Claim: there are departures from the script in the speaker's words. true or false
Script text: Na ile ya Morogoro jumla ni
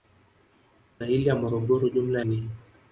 false